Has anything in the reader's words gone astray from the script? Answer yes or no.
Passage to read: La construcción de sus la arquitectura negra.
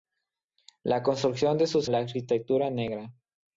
no